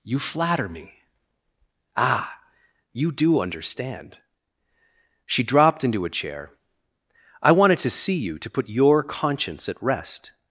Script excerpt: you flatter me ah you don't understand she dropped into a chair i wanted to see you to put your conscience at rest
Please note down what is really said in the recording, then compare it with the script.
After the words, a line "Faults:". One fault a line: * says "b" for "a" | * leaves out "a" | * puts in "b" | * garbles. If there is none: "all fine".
you flatter me ah you do understand she dropped into a chair i wanted to see you to put your conscience at rest
Faults:
* says "do" for "don't"